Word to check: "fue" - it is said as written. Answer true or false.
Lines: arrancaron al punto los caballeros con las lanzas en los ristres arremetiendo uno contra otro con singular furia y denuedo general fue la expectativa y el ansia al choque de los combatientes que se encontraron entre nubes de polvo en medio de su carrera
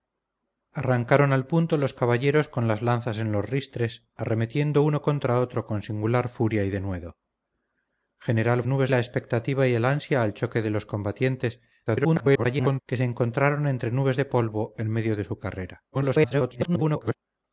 false